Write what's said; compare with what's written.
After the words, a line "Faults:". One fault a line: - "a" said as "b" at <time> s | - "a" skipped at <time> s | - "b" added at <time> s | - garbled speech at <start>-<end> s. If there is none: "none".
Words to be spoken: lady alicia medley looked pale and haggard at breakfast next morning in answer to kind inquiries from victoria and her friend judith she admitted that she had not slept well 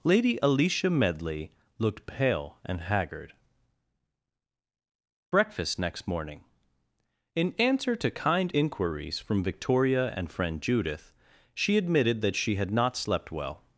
lady alicia medley looked pale and haggard breakfast next morning in answer to kind inquiries from victoria and friend judith she admitted that she had not slept well
Faults:
- "at" skipped at 3.3 s
- "her" skipped at 10.3 s